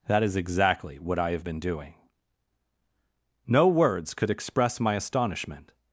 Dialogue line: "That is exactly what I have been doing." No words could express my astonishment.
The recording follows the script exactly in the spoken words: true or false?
true